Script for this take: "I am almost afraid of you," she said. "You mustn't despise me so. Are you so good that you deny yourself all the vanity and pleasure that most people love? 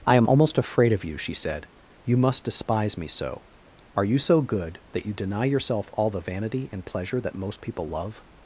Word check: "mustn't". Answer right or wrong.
wrong